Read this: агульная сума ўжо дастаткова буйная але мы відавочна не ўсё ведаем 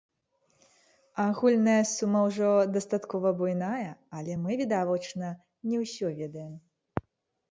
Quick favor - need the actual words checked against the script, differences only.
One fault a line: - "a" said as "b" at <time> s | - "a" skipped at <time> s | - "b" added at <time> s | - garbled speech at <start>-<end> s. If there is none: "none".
none